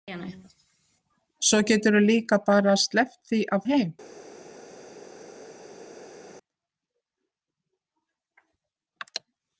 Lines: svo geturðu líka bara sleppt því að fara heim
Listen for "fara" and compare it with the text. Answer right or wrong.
wrong